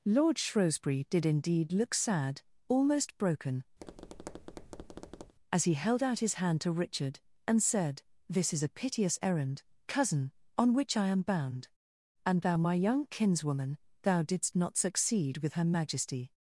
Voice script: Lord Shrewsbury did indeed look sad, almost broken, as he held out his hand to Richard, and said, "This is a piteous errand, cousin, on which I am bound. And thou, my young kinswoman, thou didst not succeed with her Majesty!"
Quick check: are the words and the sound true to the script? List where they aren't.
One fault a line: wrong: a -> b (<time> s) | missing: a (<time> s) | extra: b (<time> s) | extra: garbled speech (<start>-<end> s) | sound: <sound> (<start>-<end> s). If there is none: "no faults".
sound: tap (3.8-5.3 s)